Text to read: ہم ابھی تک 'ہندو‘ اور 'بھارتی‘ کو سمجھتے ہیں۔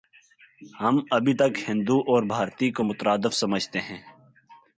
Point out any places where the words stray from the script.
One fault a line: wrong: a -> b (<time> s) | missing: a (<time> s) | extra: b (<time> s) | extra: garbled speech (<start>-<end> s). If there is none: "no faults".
extra: مترادف (2.8 s)